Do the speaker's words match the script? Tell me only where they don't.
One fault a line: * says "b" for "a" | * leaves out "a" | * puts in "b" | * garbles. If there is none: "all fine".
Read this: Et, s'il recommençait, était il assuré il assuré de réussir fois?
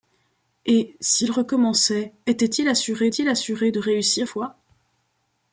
all fine